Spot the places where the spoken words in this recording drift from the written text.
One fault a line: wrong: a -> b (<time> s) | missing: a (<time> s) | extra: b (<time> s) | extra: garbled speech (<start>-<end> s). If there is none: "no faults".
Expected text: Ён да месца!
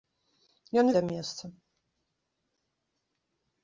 no faults